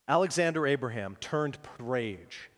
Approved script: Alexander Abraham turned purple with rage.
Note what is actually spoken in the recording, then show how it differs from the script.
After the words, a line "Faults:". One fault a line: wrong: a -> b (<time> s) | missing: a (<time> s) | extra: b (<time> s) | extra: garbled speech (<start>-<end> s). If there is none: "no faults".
Alexander Abraham turned rage.
Faults:
missing: purple with (1.6 s)